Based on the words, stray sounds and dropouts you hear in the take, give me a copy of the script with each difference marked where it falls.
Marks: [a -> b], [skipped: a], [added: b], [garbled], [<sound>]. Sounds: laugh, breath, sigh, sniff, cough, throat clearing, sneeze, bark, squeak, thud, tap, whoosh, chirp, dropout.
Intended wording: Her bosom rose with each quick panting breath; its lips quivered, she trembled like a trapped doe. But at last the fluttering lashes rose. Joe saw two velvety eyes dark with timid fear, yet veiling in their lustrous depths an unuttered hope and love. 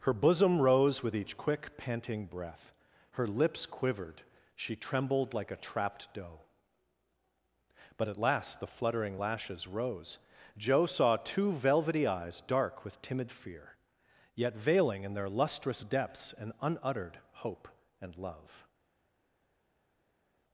Her bosom rose with each quick panting breath; [its -> her] lips quivered, she trembled like a trapped doe. But at last the fluttering lashes rose. Joe saw two velvety eyes dark with timid fear, yet veiling in their lustrous depths an unuttered hope and love.